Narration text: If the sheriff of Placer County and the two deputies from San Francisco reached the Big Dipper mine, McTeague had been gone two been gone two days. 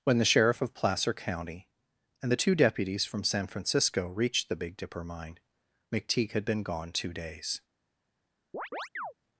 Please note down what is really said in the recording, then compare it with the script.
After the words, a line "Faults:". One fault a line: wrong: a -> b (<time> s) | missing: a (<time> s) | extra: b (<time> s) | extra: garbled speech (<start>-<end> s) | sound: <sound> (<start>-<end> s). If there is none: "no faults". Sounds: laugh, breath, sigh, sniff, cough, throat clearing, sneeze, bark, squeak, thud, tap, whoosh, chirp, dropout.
When the sheriff of Placer County and the two deputies from San Francisco reached the Big Dipper mine, McTeague had been gone two days.
Faults:
wrong: If -> When (0.0 s)
missing: been gone two (7.1 s)
sound: chirp (8.5-9.1 s)